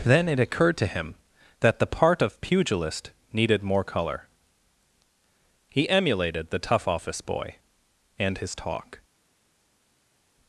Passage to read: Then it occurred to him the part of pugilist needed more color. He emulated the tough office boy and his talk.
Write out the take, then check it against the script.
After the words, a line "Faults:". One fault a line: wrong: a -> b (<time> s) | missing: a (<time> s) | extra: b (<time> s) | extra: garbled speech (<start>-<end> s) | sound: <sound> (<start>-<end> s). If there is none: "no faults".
Then it occurred to him that the part of pugilist needed more color. He emulated the tough office boy and his talk.
Faults:
extra: that (1.6 s)